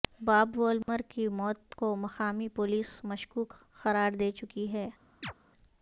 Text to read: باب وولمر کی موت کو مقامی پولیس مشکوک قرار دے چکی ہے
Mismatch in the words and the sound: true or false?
true